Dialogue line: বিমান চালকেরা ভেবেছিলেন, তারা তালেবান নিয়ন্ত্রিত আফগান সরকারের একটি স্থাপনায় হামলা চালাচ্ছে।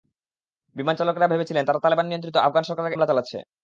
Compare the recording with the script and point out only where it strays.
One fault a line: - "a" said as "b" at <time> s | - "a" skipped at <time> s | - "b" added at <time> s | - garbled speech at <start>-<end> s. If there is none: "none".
- "একটি স্থাপনায়" skipped at 3.0 s